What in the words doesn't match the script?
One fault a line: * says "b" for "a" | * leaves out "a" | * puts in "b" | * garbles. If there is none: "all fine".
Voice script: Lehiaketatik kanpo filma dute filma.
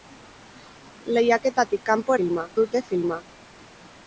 all fine